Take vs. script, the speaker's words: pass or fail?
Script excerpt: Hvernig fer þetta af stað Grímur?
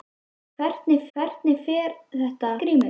fail